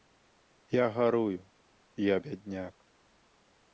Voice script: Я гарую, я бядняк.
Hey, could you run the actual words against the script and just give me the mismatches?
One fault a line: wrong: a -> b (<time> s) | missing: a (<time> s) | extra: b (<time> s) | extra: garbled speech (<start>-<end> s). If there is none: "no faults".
no faults